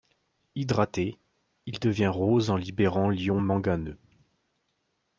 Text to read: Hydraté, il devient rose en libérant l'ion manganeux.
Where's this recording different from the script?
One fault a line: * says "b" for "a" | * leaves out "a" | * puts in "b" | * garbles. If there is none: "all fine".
all fine